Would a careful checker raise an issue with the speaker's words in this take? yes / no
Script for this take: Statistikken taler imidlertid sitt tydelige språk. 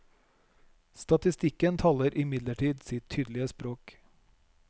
no